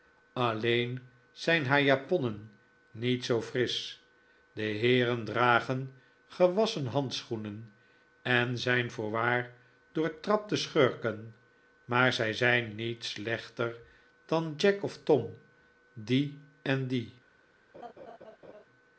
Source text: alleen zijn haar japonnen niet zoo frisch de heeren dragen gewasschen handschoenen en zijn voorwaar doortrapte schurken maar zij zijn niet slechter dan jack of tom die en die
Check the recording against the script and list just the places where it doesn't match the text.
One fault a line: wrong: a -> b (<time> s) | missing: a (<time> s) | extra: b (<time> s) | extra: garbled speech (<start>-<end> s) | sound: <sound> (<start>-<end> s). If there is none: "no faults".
sound: laugh (17.7-18.7 s)